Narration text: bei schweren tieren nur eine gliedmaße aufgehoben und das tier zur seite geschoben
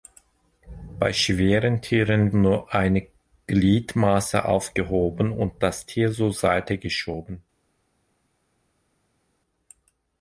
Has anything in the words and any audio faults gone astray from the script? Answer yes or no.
no